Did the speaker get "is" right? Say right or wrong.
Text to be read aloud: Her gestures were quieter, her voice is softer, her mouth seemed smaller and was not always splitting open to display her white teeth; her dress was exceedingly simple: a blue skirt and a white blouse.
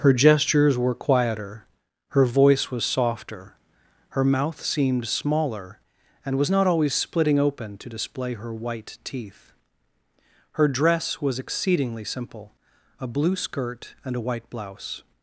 wrong